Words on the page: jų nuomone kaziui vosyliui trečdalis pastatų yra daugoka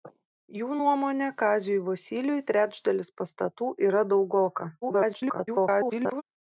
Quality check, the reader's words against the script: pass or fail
fail